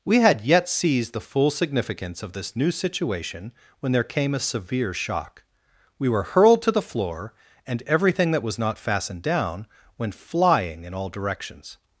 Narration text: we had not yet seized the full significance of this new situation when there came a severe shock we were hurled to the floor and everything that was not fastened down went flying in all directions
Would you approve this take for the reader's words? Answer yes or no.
no